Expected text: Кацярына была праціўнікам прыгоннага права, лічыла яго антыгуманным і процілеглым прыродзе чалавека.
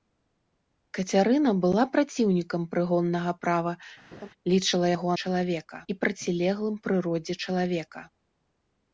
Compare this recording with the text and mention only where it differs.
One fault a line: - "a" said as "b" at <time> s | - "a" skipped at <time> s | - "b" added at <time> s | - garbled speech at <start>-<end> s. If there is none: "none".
- "антыгуманным" said as "чалавека" at 5.2 s